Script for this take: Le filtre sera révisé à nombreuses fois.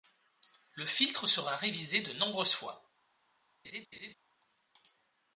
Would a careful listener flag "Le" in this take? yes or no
no